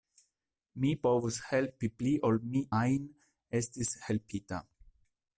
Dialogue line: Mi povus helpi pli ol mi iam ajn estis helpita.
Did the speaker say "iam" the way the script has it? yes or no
no